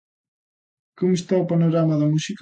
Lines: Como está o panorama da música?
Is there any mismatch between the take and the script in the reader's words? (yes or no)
no